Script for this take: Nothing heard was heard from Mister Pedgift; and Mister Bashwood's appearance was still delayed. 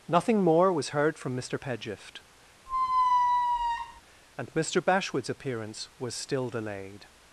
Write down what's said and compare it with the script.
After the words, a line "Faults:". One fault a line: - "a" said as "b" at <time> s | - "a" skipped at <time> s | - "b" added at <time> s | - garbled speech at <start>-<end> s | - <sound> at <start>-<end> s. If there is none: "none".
Nothing more was heard from Mister Pedgift; and Mister Bashwood's appearance was still delayed.
Faults:
- "heard" said as "more" at 0.4 s
- squeak at 2.7-4.0 s